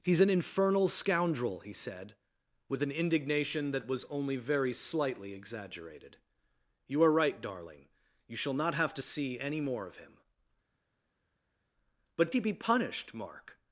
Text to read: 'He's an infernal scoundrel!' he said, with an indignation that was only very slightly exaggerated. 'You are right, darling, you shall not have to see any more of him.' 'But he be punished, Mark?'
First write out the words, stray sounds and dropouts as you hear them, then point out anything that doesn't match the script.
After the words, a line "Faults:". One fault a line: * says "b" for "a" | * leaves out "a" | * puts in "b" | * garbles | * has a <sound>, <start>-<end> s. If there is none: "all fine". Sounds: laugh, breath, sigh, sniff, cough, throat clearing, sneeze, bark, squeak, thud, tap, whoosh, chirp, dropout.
'He's an infernal scoundrel!' he said, with an indignation that was only very slightly exaggerated. 'You are right, darling, you shall not have to see any more of him.' 'But he be punished, Mark?'
Faults:
all fine